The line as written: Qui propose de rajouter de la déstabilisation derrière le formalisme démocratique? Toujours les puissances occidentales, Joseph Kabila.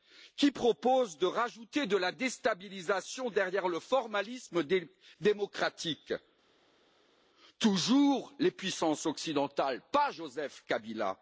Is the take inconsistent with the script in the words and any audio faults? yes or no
yes